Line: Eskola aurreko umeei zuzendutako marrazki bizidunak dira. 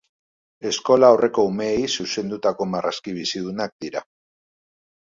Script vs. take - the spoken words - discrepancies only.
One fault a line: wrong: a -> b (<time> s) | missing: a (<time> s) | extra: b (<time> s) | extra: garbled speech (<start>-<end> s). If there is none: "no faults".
no faults